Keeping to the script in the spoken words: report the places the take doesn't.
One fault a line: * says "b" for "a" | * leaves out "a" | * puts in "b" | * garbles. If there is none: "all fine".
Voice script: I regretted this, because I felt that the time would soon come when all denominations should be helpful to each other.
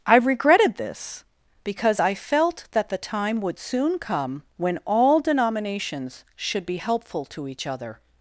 all fine